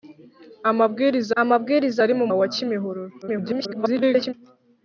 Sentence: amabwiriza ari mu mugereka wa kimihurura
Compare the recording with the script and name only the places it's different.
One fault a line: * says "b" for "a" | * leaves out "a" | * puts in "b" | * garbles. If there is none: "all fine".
* puts in "amabwiriza"
* leaves out "mugereka"
* garbles